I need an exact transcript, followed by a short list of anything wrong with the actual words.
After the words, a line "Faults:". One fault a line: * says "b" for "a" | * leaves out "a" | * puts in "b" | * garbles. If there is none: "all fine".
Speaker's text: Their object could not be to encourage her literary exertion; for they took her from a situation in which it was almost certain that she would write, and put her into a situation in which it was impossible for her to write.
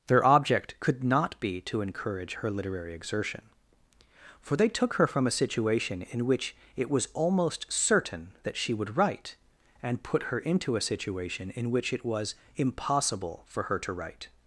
Their object could not be to encourage her literary exertion; for they took her from a situation in which it was almost certain that she would write, and put her into a situation in which it was impossible for her to write.
Faults:
all fine